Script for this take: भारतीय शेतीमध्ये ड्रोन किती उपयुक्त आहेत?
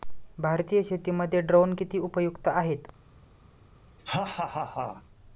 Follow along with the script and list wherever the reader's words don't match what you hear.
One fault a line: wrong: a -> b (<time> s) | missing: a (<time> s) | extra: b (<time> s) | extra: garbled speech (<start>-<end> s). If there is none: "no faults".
no faults